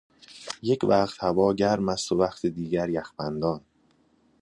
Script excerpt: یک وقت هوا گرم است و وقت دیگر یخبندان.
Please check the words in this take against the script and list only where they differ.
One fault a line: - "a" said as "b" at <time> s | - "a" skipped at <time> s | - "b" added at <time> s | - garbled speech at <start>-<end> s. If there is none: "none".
none